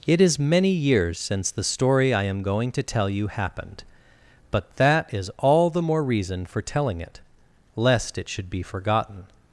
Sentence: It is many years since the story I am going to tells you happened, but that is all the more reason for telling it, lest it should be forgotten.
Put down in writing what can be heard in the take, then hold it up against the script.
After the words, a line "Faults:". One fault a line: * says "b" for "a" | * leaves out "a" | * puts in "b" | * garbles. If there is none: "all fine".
It is many years since the story I am going to tell you happened, but that is all the more reason for telling it, lest it should be forgotten.
Faults:
* says "tell" for "tells"